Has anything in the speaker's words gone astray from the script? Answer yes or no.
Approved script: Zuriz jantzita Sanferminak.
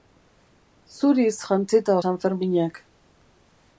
no